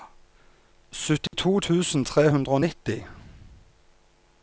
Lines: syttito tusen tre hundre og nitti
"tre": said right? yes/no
yes